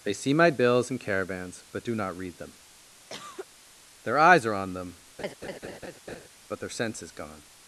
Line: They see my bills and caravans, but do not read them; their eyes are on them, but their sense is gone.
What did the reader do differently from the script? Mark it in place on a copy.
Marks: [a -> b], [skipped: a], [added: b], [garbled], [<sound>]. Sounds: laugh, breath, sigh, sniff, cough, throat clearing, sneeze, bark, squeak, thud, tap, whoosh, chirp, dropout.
They see my bills and caravans, but do not read them; [cough] their eyes are on them, [laugh] but their sense is gone.